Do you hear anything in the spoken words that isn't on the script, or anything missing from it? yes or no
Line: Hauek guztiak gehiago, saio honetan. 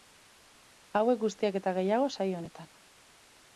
yes